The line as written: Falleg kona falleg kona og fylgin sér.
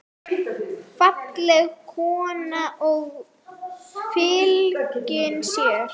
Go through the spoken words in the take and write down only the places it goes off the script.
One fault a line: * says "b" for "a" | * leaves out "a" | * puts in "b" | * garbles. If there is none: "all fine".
* leaves out "falleg kona"